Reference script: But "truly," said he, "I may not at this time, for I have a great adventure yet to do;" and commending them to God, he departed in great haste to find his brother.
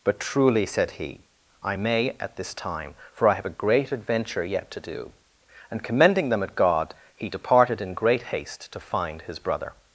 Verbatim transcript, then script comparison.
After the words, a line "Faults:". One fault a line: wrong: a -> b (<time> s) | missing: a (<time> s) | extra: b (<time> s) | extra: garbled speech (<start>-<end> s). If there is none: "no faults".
But "truly," said he, "I may at this time, for I have a great adventure yet to do;" and commending them at God, he departed in great haste to find his brother.
Faults:
missing: not (2.2 s)
wrong: to -> at (6.4 s)